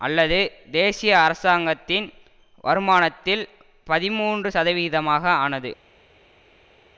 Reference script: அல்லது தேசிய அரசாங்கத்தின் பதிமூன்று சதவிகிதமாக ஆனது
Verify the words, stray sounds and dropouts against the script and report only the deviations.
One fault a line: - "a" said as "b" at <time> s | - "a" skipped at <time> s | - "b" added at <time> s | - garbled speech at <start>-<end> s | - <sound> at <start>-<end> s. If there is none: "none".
- "வருமானத்தில்" added at 2.6 s